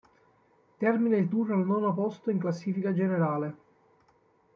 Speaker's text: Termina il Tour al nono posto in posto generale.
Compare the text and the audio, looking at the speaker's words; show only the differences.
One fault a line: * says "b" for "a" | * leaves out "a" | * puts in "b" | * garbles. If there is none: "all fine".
* says "classifica" for "posto"